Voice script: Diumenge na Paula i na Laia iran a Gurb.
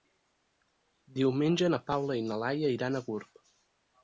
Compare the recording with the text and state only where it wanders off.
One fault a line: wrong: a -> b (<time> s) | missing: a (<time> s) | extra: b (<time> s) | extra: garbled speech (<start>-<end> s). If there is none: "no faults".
no faults